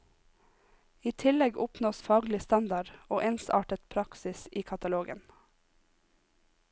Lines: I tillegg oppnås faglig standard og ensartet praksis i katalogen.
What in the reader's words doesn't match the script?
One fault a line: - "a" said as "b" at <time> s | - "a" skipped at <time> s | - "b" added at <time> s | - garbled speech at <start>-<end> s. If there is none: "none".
none